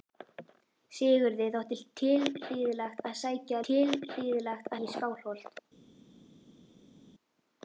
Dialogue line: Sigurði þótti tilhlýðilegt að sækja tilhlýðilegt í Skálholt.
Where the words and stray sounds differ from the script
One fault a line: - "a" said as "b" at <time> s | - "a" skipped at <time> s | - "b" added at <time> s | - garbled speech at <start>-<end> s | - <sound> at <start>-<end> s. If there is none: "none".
none